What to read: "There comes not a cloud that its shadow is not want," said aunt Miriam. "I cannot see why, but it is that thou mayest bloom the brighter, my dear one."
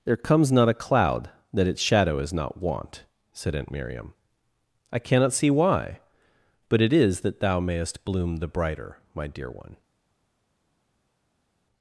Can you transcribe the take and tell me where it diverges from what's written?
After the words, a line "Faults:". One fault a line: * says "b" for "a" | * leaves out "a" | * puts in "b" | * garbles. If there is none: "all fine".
"There comes not a cloud that its shadow is not want," said aunt Miriam. "I cannot see why, but it is that thou mayest bloom the brighter, my dear one."
Faults:
all fine